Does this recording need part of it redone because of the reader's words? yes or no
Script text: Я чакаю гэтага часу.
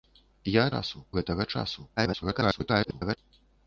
yes